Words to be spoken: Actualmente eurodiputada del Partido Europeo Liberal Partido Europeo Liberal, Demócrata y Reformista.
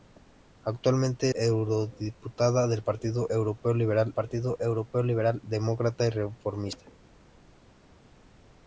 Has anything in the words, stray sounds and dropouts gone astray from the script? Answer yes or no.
no